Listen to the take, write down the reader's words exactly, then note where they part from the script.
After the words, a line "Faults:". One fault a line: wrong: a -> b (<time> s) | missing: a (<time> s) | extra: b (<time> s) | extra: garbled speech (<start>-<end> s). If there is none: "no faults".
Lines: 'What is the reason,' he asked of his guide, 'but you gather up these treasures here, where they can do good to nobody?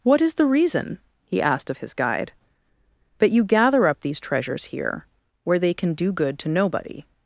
'What is the reason,' he asked of his guide, 'but you gather up these treasures here, where they can do good to nobody?
Faults:
no faults